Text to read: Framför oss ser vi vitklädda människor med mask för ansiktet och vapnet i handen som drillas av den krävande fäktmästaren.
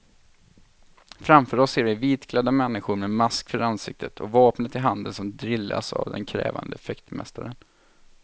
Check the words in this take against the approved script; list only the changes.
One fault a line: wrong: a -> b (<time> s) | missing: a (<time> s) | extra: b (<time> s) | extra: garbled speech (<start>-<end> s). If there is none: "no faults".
no faults